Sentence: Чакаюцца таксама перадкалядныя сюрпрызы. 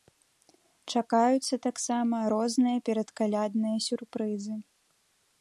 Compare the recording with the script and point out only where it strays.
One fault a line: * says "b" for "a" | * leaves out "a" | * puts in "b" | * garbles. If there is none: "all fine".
* puts in "розныя"